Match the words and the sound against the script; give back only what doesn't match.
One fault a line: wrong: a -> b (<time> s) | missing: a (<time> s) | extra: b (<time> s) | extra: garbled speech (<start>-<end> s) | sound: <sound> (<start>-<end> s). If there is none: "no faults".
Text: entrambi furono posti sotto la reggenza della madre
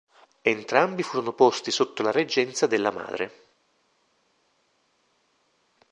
no faults